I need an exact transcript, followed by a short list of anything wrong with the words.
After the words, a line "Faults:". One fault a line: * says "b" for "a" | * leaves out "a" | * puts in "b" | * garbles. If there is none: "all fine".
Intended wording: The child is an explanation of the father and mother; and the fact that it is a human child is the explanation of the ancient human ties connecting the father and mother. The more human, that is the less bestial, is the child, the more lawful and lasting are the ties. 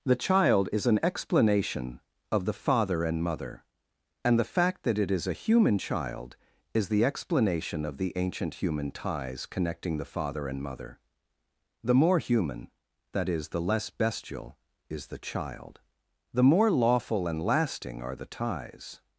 The child is an explanation of the father and mother; and the fact that it is a human child is the explanation of the ancient human ties connecting the father and mother. The more human, that is the less bestial, is the child, the more lawful and lasting are the ties.
Faults:
all fine